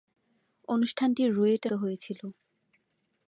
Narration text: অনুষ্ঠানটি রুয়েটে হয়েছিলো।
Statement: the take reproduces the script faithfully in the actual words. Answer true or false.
true